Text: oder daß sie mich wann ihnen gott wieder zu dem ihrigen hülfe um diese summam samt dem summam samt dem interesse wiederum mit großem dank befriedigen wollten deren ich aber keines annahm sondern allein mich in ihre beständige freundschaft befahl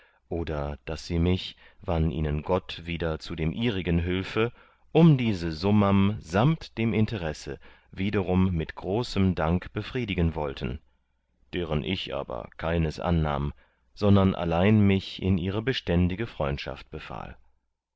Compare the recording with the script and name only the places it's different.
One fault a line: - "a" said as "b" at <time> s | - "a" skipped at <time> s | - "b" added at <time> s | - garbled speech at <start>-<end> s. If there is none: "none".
- "summam samt dem" skipped at 6.9 s